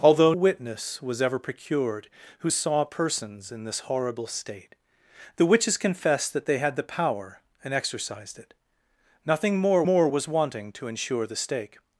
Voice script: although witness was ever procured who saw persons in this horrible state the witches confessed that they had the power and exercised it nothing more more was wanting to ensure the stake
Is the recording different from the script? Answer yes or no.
no